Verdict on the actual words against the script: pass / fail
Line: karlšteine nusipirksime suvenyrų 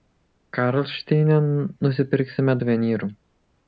pass